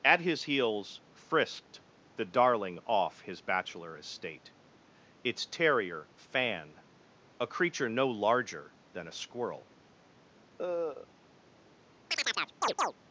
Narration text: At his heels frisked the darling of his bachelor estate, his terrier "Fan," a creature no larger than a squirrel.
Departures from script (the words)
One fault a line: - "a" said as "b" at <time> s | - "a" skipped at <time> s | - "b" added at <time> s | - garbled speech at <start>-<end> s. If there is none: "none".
- "of" said as "off" at 2.9 s
- "his" said as "its" at 5.2 s